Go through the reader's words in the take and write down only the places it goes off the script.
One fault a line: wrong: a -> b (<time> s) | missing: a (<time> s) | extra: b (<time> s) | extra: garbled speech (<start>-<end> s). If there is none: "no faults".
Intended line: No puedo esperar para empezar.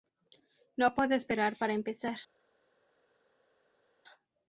no faults